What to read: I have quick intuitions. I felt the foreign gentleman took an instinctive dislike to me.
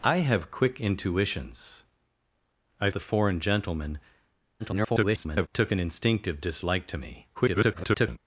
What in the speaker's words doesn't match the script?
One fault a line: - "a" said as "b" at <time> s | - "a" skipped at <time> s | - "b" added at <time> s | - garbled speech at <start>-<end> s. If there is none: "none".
- "felt" skipped at 2.9 s
- garbled speech at 4.6-5.5 s
- garbled speech at 7.3-8.2 s